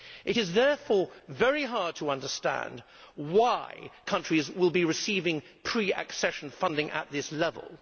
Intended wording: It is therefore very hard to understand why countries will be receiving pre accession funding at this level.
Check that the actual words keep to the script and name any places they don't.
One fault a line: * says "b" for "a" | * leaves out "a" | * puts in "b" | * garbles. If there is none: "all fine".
all fine